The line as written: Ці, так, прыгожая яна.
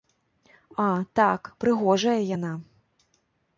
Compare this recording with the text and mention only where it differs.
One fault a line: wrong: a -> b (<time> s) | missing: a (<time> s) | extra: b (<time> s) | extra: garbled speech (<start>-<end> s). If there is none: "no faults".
wrong: Ці -> А (0.8 s)